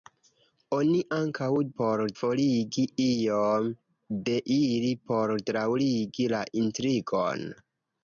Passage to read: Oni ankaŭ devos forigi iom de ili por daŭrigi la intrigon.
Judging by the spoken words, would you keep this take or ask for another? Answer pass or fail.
fail